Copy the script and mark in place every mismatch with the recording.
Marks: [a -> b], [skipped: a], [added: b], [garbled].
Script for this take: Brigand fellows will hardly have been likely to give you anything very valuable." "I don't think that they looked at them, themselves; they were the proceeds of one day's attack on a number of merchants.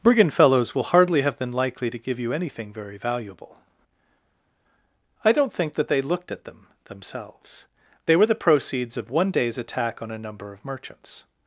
Brigand fellows will hardly have been likely to give you anything very valuable." "I don't think that they looked at them, themselves; they were the proceeds of one day's attack on a number of merchants.